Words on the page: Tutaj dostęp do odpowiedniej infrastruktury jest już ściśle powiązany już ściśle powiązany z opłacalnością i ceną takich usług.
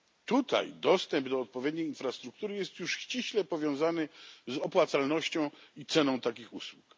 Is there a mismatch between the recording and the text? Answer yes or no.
yes